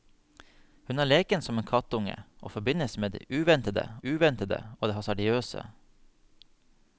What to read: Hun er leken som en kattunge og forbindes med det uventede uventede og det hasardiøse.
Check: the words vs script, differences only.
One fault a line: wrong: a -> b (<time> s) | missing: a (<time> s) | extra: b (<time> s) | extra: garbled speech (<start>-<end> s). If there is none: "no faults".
no faults